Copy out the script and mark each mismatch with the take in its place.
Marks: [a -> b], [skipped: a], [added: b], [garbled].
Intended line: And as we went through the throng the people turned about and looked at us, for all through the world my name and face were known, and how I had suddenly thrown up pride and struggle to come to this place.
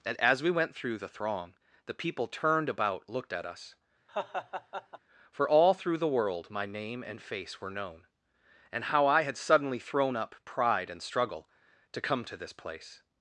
And as we went through the throng the people turned about [skipped: and] looked at us, for all through the world my name and face were known, and how I had suddenly thrown up pride and struggle to come to this place.